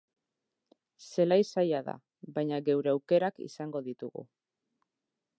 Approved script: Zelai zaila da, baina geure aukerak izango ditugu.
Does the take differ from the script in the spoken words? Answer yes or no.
no